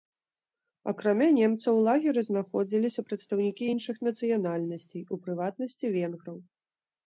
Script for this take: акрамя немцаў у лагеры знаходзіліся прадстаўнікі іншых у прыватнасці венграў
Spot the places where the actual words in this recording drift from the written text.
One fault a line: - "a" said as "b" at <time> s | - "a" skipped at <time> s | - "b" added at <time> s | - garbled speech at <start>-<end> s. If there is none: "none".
- "нацыянальнасцей" added at 4.1 s